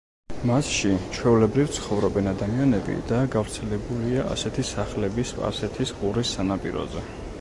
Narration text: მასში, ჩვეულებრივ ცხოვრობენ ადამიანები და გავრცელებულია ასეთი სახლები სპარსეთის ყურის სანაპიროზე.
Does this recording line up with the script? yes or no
yes